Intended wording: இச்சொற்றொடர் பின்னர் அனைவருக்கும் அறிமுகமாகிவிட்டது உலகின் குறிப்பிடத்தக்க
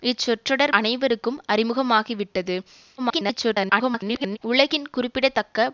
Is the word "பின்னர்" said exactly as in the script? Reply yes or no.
no